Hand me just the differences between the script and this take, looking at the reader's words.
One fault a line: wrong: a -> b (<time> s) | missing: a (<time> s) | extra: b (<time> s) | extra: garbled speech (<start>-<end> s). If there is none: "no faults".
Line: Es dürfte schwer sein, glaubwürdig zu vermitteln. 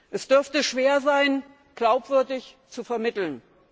no faults